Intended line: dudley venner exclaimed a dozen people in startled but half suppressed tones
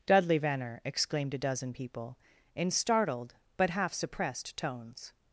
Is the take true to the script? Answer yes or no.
yes